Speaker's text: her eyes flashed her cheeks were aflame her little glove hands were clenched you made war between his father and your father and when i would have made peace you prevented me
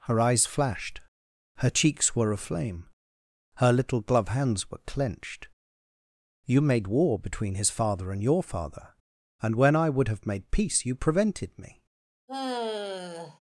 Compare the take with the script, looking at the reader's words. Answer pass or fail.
pass